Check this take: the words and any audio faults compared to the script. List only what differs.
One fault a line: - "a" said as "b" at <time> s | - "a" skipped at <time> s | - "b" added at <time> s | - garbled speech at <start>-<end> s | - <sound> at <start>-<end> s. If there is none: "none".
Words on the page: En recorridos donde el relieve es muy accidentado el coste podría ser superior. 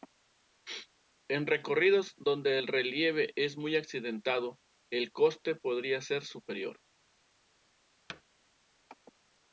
- thud at 8.1-8.2 s